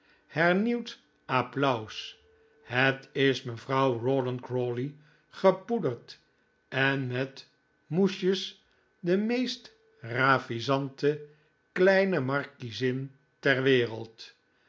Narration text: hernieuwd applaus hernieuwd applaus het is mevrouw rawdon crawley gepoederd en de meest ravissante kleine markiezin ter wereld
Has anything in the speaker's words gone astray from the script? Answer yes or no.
yes